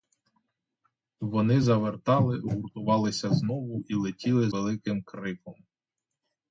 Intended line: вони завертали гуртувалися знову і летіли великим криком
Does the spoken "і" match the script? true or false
true